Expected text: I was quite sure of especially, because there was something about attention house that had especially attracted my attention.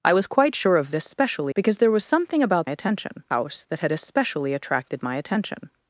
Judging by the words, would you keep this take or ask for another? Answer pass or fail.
pass